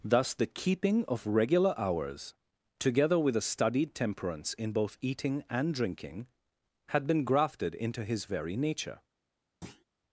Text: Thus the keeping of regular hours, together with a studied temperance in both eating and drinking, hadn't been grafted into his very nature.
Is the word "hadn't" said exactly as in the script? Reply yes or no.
no